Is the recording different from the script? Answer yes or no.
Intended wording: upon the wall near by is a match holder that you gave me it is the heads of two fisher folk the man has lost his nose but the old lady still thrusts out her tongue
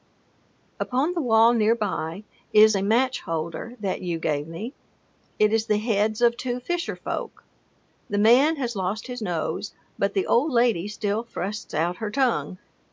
no